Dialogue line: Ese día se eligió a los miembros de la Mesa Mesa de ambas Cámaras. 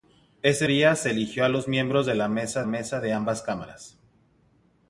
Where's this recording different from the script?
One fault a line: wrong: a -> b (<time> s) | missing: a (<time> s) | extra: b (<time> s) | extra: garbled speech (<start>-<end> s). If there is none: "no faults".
no faults